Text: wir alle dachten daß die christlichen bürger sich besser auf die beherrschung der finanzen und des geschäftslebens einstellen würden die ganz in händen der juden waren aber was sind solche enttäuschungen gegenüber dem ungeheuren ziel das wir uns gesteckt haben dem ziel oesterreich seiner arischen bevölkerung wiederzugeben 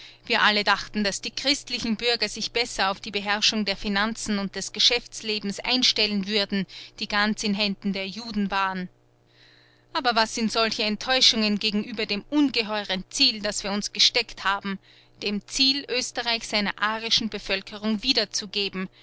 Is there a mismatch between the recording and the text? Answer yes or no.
no